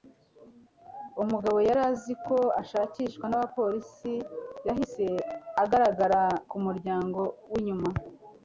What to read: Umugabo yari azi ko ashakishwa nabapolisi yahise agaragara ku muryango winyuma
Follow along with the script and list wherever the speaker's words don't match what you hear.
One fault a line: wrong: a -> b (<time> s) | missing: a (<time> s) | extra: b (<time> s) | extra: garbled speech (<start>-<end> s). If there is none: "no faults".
no faults